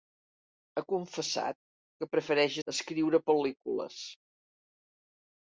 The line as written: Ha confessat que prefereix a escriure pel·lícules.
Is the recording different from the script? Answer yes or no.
no